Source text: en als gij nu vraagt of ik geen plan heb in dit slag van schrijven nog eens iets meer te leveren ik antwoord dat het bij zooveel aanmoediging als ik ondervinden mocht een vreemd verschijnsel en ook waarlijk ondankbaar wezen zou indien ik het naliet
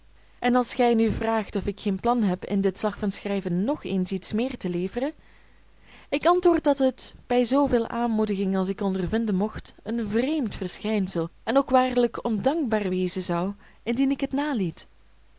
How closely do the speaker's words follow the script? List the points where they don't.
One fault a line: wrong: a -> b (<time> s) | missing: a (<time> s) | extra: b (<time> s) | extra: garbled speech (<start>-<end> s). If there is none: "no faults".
no faults